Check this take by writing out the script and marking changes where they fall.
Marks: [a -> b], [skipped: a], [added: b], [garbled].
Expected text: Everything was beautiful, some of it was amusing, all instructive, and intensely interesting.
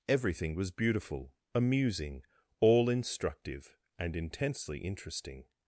Everything was beautiful, [skipped: some of it was] amusing, all instructive, and intensely interesting.